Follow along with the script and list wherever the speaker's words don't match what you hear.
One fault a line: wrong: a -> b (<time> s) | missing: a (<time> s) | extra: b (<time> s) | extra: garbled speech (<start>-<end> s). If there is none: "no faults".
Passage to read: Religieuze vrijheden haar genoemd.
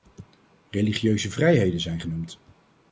wrong: haar -> zijn (1.8 s)